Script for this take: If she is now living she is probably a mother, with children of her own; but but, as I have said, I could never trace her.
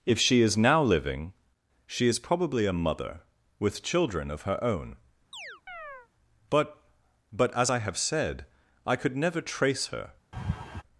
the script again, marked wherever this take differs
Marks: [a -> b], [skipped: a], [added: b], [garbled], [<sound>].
If she is now living she is probably a mother, with children of her own; [chirp] but but, as I have said, I could never trace her. [laugh]